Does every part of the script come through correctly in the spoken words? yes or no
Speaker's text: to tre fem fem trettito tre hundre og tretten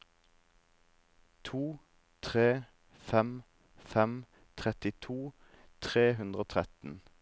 yes